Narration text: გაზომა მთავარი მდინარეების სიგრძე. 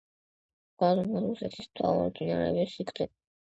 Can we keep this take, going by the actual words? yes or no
no